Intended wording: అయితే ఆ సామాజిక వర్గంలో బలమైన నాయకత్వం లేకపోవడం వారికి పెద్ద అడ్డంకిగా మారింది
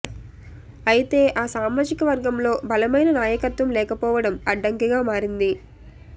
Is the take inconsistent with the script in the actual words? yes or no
yes